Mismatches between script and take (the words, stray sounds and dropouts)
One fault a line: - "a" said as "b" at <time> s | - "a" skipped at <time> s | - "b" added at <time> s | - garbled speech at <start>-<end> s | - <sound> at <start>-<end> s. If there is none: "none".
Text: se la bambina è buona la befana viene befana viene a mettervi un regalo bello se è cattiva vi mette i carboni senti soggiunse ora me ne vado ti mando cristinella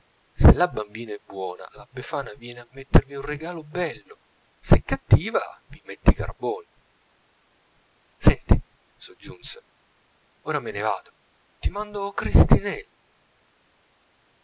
- "befana viene" skipped at 2.6 s